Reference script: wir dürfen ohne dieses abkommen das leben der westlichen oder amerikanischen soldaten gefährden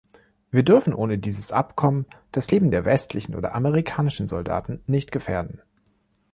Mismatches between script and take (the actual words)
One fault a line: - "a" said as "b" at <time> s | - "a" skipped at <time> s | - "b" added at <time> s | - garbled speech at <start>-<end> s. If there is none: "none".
- "nicht" added at 4.9 s